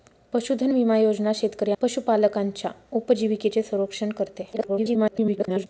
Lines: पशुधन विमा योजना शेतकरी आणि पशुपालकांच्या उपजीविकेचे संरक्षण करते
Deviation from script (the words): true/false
true